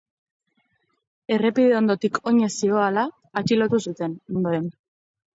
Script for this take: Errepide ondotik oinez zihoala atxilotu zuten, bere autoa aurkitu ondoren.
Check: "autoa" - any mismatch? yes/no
yes